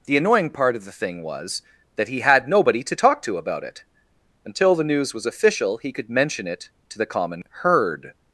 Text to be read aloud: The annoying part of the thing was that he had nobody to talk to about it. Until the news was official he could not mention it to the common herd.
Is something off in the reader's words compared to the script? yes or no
yes